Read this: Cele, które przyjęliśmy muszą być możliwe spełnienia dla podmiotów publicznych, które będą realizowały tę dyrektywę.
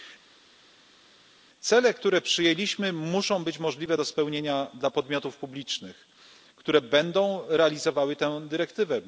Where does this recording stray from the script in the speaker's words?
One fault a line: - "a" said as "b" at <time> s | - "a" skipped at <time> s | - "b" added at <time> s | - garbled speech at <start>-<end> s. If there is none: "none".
- "do" added at 3.9 s